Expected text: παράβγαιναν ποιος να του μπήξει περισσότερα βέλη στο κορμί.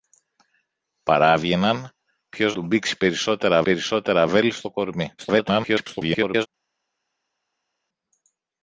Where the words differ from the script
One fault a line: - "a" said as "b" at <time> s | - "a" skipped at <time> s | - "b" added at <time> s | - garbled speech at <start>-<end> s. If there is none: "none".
- "να" skipped at 2.5 s
- "περισσότερα" added at 3.6 s
- garbled speech at 5.2-6.5 s